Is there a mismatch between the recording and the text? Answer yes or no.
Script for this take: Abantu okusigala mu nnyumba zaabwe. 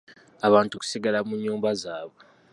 no